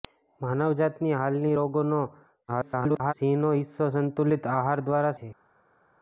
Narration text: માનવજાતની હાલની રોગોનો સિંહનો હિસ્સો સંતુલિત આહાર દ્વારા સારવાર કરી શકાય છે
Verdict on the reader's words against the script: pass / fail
fail